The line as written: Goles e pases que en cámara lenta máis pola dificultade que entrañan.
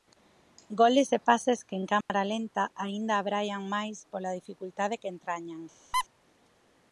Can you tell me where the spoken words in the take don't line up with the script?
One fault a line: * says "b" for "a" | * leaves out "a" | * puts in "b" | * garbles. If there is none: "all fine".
* puts in "aínda abraian"